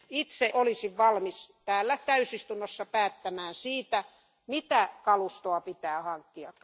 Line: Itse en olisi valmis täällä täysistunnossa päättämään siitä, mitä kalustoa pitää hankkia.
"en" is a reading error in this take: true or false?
true